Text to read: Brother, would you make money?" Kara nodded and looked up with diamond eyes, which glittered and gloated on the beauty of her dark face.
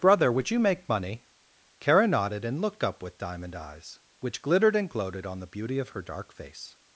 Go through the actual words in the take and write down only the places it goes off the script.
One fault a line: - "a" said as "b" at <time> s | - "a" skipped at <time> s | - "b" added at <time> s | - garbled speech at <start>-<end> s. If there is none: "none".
none